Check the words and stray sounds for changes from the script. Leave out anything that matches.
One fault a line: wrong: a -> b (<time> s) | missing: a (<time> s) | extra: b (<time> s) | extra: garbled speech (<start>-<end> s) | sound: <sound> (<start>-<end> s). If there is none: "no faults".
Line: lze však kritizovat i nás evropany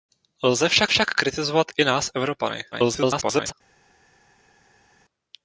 extra: však (0.9 s)
extra: garbled speech (2.7-3.5 s)